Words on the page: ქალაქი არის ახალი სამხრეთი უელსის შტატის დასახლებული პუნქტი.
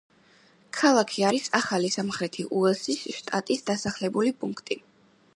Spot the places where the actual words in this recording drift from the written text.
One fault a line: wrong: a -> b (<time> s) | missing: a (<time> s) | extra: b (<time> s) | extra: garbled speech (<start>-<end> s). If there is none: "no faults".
no faults